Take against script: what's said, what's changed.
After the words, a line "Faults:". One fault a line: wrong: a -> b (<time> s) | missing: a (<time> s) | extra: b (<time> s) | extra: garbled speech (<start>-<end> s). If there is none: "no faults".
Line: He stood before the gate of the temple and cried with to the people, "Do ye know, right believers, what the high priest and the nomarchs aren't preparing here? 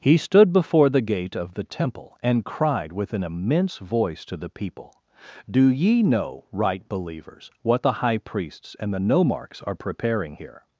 He stood before the gate of the temple and cried with an immense voice to the people, "Do ye know, right believers, what the high priests and the nomarchs are preparing here?
Faults:
extra: an immense voice (3.1 s)
wrong: priest -> priests (8.2 s)
wrong: aren't -> are (9.6 s)